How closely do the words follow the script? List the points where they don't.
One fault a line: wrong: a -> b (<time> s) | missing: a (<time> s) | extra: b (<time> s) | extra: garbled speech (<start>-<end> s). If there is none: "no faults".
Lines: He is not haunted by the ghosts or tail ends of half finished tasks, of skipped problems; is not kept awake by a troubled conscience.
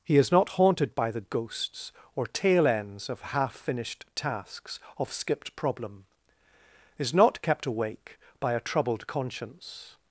wrong: problems -> problem (5.5 s)